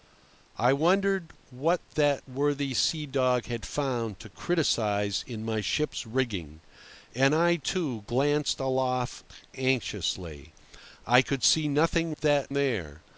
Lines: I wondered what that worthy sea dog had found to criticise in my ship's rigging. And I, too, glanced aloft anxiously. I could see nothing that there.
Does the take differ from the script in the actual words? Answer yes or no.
no